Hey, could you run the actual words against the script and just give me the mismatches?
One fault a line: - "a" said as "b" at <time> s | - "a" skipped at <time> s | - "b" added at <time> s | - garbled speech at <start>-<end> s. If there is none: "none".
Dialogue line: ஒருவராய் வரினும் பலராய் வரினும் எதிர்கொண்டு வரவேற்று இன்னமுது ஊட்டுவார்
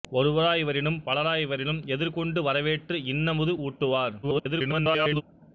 - garbled speech at 4.2-5.2 s